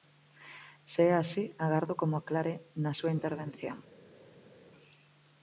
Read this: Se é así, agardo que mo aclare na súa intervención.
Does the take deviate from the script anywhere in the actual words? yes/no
no